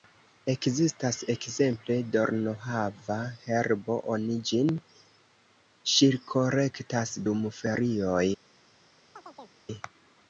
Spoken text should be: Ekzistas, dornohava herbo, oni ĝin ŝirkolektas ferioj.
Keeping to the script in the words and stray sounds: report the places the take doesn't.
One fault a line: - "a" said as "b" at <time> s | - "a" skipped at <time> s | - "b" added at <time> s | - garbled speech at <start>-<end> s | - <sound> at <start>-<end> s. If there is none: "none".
- "ekzemple" added at 1.3 s
- "dum" added at 7.3 s
- chirp at 9.1-9.6 s